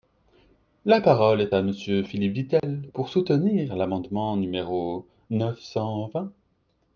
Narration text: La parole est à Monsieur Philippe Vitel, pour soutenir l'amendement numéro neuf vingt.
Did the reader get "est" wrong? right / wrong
right